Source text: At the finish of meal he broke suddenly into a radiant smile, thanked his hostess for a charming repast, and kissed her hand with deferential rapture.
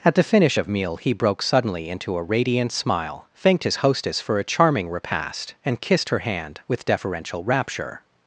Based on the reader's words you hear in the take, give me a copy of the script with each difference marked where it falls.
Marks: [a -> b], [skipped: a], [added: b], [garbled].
At the finish of meal he broke suddenly into a radiant smile, thanked his hostess for a charming repast, and kissed her hand with deferential rapture.